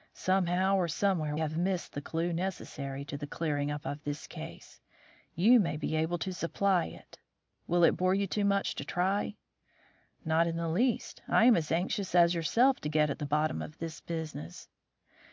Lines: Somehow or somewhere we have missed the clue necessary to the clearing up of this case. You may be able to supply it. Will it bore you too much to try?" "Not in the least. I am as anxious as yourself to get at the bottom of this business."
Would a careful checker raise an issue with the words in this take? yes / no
yes